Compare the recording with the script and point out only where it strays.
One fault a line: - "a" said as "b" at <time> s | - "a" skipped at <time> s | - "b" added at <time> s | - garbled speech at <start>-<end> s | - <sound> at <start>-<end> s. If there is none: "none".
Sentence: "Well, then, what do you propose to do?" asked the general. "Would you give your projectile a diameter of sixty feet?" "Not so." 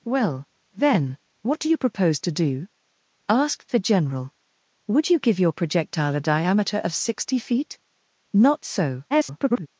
- garbled speech at 9.1-9.7 s